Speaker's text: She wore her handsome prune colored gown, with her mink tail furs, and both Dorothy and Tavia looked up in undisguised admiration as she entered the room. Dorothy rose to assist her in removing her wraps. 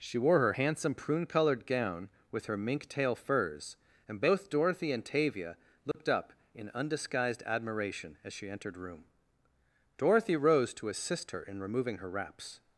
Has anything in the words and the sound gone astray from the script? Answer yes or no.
yes